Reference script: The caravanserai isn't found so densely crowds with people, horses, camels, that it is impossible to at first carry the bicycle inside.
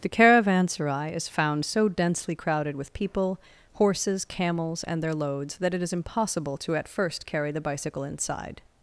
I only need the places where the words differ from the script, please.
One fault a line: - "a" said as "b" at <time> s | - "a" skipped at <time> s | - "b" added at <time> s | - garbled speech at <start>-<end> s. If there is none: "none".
- "isn't" said as "is" at 1.1 s
- "crowds" said as "crowded" at 2.4 s
- "and their loads" added at 4.8 s